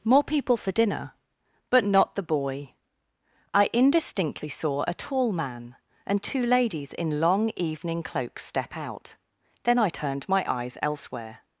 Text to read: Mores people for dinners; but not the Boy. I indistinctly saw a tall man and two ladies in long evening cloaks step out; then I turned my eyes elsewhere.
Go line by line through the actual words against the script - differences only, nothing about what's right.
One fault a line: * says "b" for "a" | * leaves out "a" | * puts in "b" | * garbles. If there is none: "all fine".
* says "More" for "Mores"
* says "dinner" for "dinners"